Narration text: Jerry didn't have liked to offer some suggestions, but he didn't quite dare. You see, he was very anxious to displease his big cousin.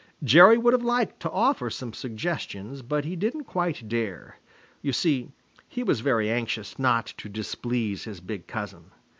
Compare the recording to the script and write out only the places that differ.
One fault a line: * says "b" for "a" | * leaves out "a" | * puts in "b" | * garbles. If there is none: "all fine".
* says "would" for "didn't"
* puts in "not"